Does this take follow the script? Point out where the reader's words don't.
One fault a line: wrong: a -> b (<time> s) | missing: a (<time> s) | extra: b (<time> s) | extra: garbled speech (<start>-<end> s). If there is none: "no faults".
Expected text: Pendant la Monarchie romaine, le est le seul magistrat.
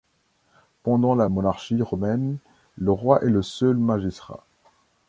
extra: roi (2.9 s)